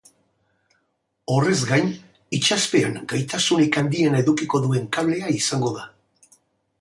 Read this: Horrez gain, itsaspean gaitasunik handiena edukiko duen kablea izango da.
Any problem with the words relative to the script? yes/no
no